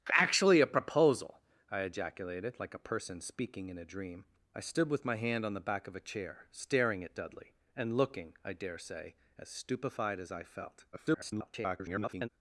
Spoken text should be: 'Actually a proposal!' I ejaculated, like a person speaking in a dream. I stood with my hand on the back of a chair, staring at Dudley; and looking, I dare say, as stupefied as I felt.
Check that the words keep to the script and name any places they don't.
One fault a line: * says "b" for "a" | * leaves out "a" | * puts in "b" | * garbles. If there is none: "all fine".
* garbles